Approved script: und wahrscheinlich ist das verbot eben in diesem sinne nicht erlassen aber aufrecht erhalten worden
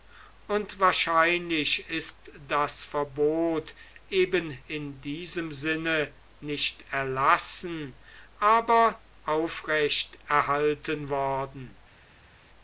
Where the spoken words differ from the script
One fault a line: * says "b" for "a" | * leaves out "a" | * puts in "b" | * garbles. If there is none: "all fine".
all fine